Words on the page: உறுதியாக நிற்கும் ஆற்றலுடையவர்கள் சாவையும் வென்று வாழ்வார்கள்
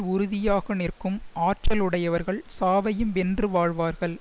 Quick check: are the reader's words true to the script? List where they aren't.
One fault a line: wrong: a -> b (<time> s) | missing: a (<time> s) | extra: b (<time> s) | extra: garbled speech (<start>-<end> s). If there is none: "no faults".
no faults